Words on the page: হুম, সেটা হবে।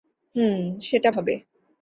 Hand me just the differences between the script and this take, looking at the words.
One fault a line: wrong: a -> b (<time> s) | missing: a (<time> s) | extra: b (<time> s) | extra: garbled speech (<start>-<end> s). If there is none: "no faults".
no faults